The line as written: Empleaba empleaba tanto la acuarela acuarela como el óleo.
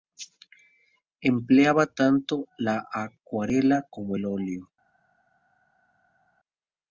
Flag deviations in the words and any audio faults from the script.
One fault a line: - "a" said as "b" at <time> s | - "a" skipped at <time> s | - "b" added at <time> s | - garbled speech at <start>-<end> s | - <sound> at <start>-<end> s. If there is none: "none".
- "empleaba" skipped at 1.9 s
- "acuarela" skipped at 3.9 s